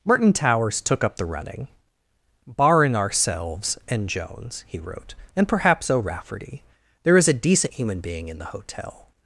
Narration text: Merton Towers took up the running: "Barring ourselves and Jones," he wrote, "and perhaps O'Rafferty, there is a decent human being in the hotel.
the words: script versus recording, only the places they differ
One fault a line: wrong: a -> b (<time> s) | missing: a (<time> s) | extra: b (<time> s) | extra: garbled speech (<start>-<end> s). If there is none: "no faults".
no faults